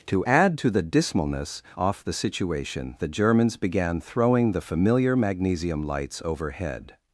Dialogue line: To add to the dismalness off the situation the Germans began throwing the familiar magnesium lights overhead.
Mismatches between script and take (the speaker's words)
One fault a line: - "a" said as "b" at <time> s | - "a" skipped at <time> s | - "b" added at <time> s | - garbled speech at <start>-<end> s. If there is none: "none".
none